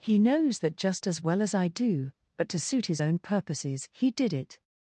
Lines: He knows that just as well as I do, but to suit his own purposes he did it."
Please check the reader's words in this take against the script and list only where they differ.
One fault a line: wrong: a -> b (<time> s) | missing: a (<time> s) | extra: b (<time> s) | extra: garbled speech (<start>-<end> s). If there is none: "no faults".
no faults